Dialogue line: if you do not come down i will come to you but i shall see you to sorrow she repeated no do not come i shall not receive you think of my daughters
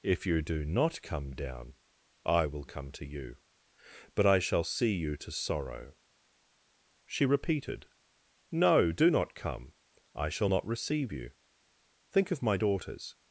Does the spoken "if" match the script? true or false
true